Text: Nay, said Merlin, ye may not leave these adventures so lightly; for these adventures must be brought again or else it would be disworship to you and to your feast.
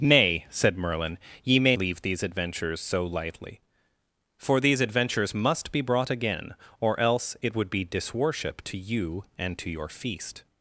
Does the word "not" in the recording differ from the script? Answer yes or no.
yes